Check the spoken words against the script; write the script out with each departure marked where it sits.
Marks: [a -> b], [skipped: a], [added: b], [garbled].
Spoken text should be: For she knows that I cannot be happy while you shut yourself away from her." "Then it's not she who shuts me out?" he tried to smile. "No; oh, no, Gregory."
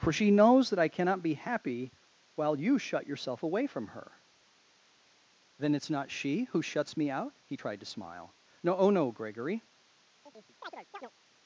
For she knows that I cannot be happy while you shut yourself away from her." "Then it's not she who shuts me out?" he tried to smile. "No; oh, no, Gregory."